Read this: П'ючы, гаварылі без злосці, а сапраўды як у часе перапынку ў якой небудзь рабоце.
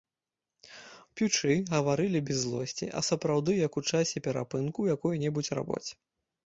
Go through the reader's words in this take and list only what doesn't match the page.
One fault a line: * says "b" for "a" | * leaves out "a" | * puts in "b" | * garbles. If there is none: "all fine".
all fine